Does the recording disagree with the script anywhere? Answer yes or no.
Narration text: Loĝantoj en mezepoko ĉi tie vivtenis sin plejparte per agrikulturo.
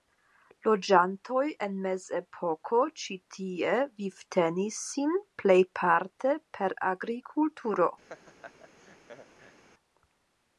no